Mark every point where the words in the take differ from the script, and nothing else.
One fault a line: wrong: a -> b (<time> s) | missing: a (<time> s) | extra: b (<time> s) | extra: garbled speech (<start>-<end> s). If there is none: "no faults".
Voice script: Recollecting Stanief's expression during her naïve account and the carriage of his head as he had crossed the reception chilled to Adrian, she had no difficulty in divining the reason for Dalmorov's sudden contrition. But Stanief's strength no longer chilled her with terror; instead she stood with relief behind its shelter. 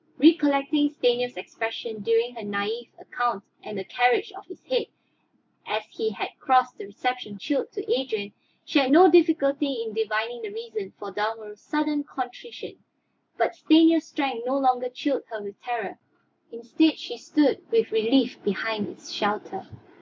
no faults